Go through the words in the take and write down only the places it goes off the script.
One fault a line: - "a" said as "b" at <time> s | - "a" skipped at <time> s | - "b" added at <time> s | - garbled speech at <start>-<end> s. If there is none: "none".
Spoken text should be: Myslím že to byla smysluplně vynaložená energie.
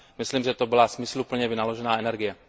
none